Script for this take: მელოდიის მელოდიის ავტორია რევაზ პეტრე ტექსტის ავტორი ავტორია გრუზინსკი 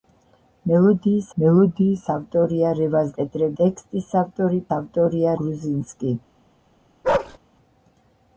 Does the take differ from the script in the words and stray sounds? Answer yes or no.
yes